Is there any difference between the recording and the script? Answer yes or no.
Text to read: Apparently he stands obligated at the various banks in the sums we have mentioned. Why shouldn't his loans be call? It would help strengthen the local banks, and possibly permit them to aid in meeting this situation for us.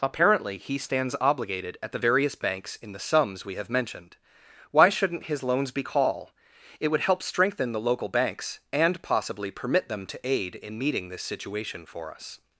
no